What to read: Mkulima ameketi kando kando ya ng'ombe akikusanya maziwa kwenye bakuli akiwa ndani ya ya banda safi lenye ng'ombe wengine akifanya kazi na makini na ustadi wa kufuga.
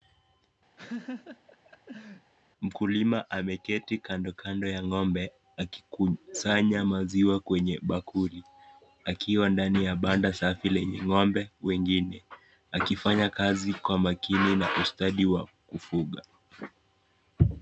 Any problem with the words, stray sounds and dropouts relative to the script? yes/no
yes